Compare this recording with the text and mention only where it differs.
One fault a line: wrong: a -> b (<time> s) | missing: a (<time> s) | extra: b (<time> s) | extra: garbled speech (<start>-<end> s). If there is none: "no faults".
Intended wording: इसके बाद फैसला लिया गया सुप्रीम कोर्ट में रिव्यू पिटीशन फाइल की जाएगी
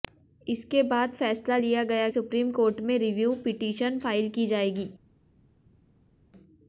no faults